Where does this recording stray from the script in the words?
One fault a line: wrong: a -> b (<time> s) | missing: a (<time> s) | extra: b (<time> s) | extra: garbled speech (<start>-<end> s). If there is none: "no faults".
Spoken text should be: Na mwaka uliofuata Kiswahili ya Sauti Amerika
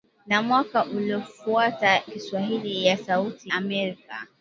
no faults